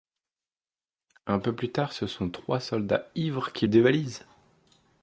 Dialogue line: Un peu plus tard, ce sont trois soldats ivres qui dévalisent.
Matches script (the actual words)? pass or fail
pass